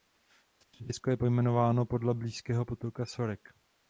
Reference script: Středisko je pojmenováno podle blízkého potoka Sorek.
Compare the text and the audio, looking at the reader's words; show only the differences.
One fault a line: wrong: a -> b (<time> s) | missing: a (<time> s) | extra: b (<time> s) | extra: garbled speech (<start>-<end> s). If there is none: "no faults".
no faults